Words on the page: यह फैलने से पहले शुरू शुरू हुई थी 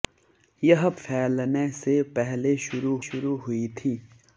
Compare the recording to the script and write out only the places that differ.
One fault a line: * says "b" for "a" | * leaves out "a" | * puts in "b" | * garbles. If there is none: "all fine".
all fine